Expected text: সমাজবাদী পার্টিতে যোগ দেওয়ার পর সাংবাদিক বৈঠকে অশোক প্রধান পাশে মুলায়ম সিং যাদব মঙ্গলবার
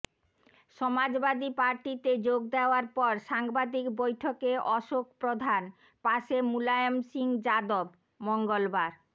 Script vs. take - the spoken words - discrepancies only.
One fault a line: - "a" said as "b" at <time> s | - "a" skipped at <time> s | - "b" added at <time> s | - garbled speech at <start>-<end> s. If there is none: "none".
none